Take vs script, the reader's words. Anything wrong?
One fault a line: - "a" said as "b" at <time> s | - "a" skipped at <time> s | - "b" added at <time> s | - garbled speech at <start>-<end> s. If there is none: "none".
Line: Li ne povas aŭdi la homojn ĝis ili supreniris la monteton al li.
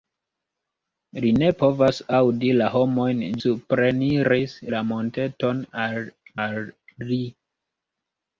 - "ĝis ili" skipped at 3.2 s
- "al" added at 6.5 s